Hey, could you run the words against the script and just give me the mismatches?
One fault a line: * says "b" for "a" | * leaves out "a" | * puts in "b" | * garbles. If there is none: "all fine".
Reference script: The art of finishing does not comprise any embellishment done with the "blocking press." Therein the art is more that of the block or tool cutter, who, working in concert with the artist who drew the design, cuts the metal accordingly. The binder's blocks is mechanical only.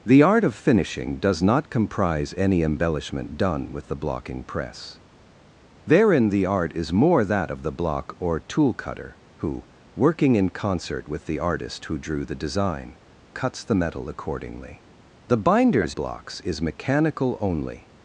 all fine